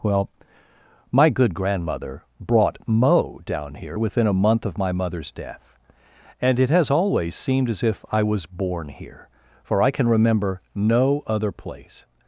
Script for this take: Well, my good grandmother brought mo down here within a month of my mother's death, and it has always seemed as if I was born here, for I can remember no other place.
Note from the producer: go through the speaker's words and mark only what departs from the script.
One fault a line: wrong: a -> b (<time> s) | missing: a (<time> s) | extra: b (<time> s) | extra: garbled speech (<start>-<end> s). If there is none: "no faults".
no faults